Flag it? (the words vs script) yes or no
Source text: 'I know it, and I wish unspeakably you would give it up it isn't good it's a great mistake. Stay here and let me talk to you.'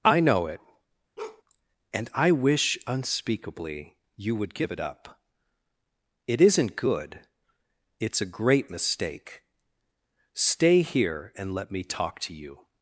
no